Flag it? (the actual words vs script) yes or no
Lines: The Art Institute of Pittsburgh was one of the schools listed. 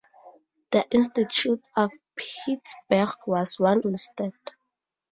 yes